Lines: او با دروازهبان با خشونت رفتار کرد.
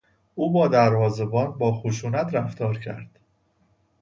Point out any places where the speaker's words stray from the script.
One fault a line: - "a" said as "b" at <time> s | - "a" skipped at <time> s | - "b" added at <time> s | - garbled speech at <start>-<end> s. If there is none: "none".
none